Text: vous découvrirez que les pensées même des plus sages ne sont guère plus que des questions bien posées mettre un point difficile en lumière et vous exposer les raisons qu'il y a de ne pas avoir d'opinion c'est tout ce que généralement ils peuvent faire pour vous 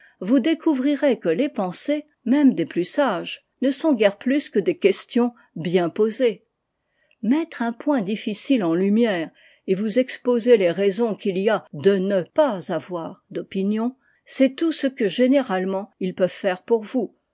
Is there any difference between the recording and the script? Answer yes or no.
no